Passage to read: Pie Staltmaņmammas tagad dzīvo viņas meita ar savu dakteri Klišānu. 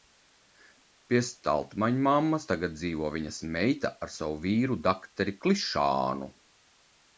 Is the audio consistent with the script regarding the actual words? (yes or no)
no